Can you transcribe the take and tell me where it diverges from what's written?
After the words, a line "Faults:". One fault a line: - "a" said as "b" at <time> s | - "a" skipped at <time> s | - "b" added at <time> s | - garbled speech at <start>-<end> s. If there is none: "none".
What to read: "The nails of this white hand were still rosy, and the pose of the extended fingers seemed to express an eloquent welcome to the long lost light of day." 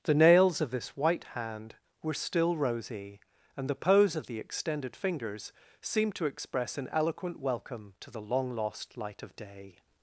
"The nails of this white hand were still rosy, and the pose of the extended fingers seemed to express an eloquent welcome to the long lost light of day."
Faults:
none